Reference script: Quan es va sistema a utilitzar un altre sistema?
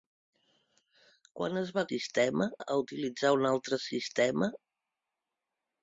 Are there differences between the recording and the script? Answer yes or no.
no